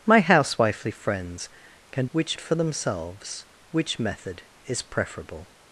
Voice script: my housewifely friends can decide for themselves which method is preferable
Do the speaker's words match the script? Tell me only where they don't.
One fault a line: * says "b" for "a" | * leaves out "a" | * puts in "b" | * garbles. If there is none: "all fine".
* says "which" for "decide"